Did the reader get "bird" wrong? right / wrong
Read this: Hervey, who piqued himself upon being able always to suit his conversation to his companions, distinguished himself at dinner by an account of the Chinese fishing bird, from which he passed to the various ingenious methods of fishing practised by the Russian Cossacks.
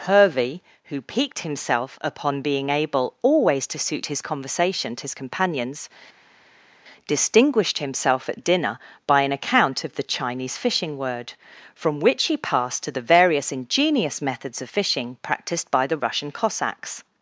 wrong